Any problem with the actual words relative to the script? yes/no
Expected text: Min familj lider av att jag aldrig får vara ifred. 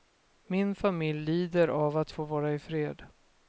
yes